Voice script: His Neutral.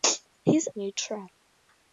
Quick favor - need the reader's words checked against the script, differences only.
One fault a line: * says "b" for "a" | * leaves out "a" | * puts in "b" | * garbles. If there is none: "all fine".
all fine